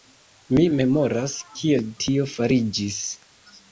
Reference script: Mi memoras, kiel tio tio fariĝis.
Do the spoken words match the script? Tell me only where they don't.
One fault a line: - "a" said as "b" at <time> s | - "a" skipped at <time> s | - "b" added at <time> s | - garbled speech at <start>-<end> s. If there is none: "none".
- "tio" skipped at 2.3 s